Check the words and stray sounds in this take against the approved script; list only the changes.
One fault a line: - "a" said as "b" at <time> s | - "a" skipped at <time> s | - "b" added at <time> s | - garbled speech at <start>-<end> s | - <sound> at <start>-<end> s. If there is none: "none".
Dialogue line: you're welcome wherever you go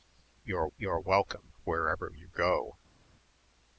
- "you're" added at 0.8 s